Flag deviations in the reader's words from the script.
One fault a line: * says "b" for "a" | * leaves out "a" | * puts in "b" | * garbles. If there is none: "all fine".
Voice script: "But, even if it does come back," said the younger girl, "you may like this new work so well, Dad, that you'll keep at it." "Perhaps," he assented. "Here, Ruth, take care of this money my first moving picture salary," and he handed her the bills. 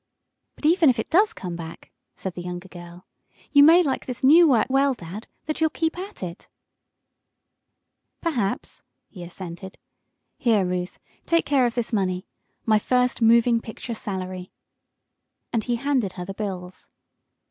* leaves out "so"